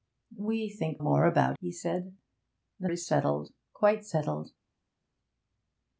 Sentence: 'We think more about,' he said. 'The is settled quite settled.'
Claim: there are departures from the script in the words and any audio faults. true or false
false